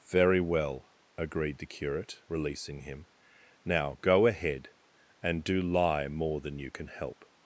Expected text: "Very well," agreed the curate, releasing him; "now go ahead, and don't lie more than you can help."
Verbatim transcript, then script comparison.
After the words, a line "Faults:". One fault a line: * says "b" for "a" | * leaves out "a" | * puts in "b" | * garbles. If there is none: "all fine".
"Very well," agreed the curate, releasing him; "now go ahead, and do lie more than you can help."
Faults:
* says "do" for "don't"